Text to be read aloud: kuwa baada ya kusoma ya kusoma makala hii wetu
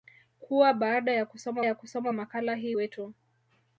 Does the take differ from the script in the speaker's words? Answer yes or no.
no